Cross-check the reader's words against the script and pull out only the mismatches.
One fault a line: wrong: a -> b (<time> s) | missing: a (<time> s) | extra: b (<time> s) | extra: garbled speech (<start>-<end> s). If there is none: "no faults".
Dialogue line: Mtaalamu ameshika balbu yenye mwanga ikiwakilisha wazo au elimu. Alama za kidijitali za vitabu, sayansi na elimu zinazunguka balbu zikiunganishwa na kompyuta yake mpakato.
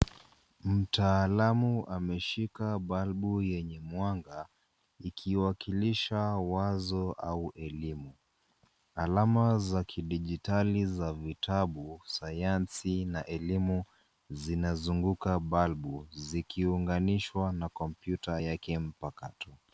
no faults